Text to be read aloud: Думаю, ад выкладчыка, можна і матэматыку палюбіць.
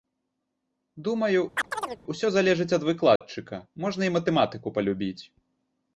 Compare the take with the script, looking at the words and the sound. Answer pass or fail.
fail